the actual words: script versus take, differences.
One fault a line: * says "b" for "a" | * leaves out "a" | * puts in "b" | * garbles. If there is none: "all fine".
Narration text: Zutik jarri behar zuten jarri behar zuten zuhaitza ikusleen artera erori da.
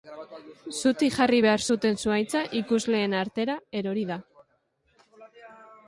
* leaves out "jarri behar zuten"